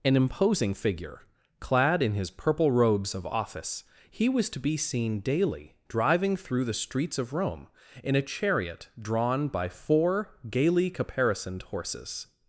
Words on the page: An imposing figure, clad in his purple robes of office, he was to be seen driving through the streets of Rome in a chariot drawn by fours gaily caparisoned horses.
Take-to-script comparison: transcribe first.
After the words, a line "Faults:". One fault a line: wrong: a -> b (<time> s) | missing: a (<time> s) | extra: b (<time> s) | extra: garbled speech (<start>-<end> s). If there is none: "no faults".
An imposing figure, clad in his purple robes of office, he was to be seen daily driving through the streets of Rome in a chariot drawn by four gaily caparisoned horses.
Faults:
extra: daily (5.2 s)
wrong: fours -> four (9.7 s)